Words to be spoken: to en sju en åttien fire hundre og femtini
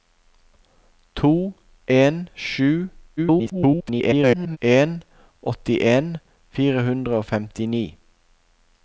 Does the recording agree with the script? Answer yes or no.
no